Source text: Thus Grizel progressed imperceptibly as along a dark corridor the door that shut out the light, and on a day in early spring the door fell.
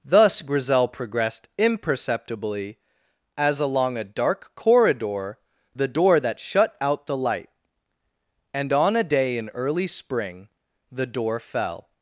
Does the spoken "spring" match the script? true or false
true